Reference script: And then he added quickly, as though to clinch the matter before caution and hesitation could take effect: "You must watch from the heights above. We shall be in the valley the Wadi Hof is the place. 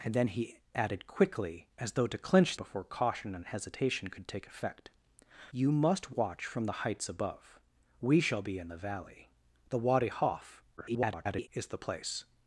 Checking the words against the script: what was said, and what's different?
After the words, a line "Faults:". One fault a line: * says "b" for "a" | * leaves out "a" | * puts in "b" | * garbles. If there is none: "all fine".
And then he added quickly, as though to clinch before caution and hesitation could take effect: "You must watch from the heights above. We shall be in the valley the Wadi Hof [garbled] is the place.
Faults:
* leaves out "the matter"
* garbles